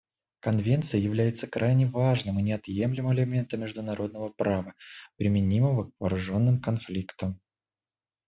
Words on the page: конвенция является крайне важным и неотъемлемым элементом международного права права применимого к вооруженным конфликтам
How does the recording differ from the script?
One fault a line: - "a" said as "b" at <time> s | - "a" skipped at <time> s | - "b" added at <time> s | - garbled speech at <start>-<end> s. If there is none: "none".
- "права" skipped at 4.8 s